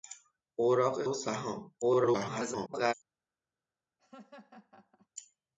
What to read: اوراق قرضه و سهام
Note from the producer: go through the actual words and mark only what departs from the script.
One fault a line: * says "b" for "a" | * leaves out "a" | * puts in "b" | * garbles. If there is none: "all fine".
* leaves out "قرضه"
* garbles